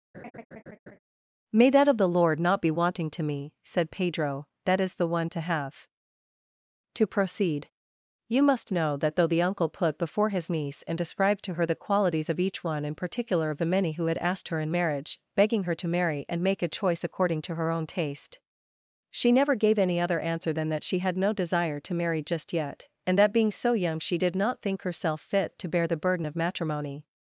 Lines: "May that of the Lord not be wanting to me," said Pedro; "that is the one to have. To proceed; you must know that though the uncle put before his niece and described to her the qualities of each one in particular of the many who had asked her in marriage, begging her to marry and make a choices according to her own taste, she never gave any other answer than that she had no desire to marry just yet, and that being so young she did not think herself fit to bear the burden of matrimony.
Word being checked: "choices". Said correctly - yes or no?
no